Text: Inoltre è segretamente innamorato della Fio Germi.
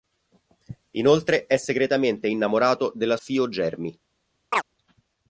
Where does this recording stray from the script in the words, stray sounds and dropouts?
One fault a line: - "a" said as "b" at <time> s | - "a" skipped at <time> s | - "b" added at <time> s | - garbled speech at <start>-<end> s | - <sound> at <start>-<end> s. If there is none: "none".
- chirp at 4.5-4.6 s